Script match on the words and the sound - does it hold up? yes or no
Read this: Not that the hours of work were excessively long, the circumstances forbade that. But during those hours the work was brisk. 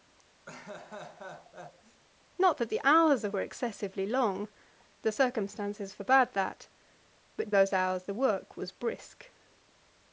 no